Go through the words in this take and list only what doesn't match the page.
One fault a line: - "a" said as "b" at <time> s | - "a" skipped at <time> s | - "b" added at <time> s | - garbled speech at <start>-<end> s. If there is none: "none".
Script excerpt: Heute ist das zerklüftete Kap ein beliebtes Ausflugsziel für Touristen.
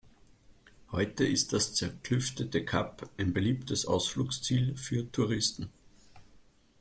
none